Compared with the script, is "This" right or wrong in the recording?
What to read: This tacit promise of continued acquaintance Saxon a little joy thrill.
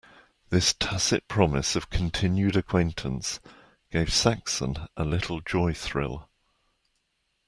right